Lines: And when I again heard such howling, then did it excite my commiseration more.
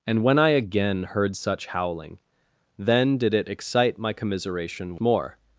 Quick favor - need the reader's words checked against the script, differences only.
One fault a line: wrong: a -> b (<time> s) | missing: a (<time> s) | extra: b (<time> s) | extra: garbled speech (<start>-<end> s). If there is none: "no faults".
no faults